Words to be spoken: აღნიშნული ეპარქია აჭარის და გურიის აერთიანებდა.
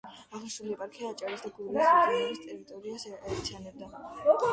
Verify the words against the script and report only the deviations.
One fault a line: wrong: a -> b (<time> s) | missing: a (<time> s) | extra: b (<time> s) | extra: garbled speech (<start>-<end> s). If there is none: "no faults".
extra: რეგიონების ტერიტორიას (1.9 s)